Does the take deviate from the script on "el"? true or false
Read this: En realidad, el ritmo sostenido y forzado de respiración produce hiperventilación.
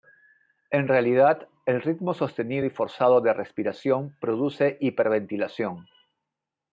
false